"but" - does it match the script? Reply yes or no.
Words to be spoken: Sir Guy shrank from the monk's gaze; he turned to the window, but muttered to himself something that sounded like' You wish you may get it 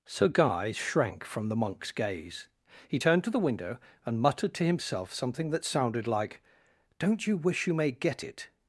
no